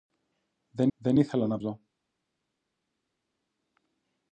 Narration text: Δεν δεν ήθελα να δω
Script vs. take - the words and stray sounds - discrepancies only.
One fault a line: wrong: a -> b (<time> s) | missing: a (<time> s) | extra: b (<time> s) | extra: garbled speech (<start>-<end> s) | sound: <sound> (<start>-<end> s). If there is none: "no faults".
no faults